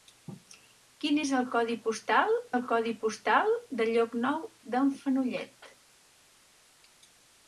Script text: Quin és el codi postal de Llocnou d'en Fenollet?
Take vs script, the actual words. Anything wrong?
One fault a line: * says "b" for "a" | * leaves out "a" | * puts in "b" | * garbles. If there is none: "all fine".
* puts in "el codi postal"